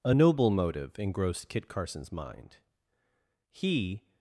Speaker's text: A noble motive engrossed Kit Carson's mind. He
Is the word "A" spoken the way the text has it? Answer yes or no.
yes